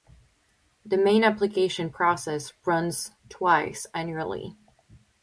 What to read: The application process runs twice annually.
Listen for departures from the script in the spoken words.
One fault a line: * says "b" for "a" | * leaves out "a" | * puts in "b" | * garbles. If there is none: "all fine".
* puts in "main"